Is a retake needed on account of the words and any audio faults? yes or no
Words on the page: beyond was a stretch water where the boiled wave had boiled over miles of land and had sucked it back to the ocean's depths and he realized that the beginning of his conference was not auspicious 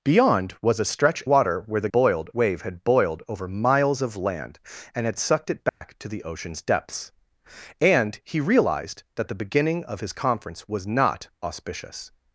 yes